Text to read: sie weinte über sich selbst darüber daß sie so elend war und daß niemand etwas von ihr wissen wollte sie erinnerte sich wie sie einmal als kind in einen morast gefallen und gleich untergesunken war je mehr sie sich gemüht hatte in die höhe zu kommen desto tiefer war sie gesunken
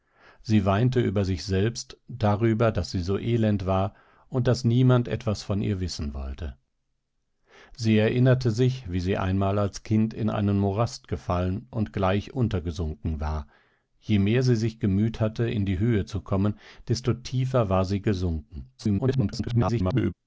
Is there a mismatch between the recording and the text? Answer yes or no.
yes